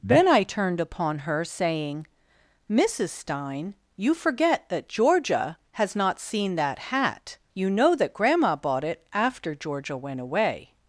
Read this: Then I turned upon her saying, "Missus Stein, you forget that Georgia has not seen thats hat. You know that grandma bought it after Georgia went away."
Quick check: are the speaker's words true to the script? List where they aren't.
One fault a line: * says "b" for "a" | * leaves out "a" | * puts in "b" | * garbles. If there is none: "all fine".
* says "that" for "thats"